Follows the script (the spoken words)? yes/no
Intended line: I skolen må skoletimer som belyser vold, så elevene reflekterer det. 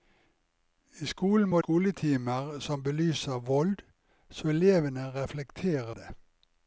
yes